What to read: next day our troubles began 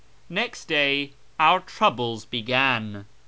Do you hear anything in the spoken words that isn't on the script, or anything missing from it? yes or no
no